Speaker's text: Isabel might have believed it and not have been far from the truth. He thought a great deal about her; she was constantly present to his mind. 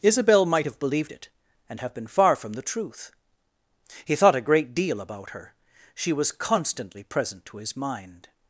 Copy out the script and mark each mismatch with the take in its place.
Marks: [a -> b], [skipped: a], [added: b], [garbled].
Isabel might have believed it and [skipped: not] have been far from the truth. He thought a great deal about her; she was constantly present to his mind.